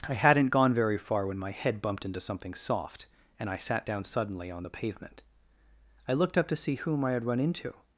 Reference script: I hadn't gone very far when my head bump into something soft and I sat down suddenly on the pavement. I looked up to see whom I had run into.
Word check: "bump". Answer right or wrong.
wrong